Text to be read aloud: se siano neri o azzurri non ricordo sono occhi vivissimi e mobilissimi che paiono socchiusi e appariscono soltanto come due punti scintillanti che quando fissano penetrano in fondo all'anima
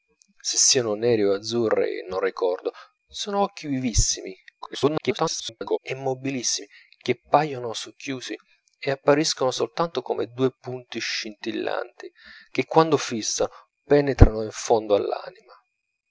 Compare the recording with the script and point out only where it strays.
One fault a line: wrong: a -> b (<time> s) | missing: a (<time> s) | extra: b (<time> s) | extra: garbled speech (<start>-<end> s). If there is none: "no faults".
extra: garbled speech (4.6-5.8 s)